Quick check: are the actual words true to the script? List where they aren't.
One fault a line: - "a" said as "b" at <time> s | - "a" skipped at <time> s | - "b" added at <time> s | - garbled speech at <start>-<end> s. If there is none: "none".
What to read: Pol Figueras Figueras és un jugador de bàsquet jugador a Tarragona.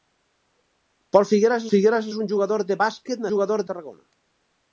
none